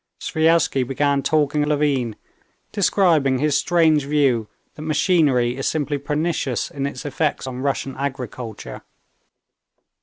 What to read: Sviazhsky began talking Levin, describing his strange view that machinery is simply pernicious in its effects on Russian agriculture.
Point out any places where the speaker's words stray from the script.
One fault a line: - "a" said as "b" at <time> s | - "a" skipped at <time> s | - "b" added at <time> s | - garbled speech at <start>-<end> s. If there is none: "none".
none